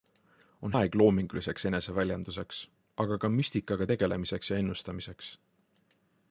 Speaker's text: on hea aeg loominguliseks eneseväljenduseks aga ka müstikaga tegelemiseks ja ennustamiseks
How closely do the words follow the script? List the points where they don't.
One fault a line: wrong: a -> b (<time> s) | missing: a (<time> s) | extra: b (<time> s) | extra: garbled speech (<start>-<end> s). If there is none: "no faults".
missing: hea (0.7 s)